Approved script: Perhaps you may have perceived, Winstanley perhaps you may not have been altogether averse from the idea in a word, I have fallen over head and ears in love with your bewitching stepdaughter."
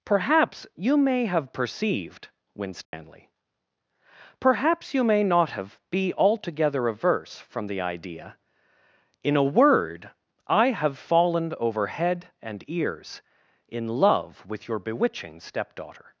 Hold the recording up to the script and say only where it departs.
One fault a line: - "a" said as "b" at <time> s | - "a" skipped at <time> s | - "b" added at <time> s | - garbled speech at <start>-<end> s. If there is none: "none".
- "been" said as "be" at 5.9 s